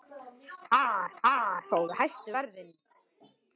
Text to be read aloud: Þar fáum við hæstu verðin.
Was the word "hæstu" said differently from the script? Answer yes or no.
no